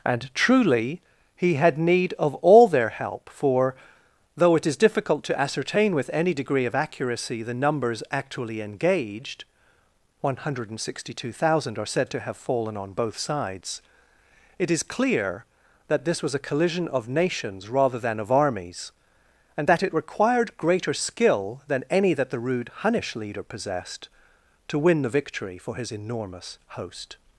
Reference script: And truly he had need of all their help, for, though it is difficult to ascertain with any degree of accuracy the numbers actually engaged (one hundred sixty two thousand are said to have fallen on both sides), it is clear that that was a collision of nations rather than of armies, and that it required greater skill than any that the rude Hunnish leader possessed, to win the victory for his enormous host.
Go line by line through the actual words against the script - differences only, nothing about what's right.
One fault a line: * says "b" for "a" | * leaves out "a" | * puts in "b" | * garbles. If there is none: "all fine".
* says "this" for "that"